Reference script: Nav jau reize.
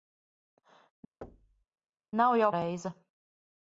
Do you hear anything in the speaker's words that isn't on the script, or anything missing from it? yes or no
no